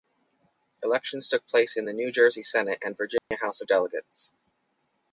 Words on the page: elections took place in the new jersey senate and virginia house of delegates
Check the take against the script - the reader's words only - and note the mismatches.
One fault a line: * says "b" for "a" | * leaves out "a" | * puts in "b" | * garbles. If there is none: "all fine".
all fine